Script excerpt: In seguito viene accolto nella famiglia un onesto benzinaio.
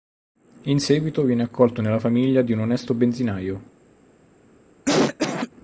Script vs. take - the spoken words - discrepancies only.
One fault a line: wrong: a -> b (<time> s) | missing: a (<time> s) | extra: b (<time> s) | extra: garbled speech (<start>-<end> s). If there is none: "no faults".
extra: di (2.4 s)